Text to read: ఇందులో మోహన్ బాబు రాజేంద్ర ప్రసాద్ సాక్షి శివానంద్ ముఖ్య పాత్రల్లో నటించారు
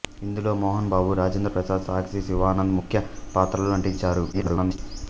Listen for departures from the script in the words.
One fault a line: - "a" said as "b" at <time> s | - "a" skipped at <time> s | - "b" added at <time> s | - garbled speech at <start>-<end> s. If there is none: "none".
- garbled speech at 4.3-4.8 s